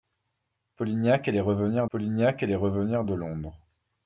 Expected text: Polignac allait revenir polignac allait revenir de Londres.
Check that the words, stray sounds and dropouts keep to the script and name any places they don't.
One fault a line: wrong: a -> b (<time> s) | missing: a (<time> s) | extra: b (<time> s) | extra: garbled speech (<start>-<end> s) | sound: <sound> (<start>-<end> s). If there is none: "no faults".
no faults